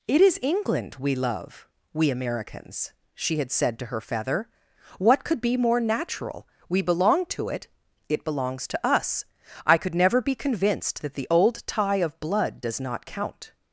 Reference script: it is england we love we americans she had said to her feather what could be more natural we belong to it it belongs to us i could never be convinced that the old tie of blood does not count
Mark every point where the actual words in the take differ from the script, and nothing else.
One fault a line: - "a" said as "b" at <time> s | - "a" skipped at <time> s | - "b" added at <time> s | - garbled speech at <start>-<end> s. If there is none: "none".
none